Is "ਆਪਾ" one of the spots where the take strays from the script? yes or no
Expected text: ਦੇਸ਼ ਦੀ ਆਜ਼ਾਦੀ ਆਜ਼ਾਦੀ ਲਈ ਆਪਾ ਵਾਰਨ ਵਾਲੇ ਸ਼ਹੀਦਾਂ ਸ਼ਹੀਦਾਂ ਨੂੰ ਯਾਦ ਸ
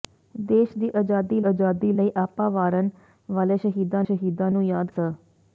no